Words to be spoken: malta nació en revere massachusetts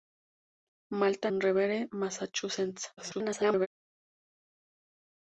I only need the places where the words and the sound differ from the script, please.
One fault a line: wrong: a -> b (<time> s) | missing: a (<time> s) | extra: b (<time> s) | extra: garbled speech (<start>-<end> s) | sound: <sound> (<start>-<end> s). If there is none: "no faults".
missing: nació (1.3 s)
extra: garbled speech (3.0-3.7 s)